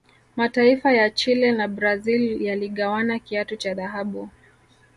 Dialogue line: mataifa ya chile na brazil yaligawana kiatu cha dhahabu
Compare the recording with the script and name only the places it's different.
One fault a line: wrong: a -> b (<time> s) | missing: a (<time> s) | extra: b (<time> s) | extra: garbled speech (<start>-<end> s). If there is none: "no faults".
no faults